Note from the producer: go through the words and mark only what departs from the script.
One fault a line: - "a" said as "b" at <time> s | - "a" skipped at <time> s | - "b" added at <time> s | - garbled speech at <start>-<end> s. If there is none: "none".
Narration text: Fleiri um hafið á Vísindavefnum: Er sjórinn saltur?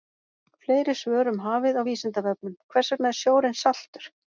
- "svör" added at 1.0 s
- "Hvers vegna" added at 2.7 s